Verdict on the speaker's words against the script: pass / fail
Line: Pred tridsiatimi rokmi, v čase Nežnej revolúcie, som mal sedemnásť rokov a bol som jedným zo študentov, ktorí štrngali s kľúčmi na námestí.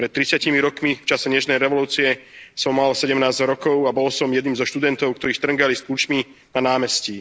pass